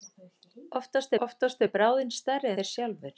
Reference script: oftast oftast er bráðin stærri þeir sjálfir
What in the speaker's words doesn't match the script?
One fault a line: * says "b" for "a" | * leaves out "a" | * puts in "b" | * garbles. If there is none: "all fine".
all fine